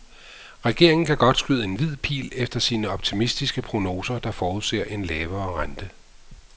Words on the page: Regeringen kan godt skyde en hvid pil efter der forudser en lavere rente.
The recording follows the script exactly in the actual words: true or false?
false